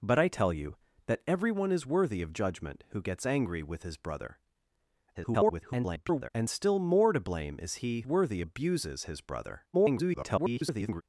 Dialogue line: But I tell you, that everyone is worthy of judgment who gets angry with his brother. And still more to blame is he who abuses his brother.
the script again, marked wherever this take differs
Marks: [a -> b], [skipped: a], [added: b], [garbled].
But I tell you, that everyone is worthy of judgment who gets angry with his brother. [garbled] And still more to blame is he [who -> worthy] abuses his brother. [garbled]